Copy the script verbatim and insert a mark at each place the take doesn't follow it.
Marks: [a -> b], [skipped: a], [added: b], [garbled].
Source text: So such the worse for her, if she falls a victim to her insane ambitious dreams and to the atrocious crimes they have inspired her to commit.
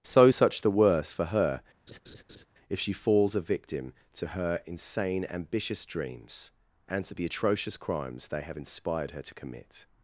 So such the worse for her, if she falls a victim to her insane ambitious dreams and to the atrocious crimes they have inspired her to commit.